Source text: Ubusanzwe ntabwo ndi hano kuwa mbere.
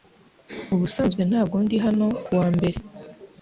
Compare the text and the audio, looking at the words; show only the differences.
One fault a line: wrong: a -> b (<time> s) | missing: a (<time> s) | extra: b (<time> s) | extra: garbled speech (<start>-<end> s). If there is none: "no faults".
no faults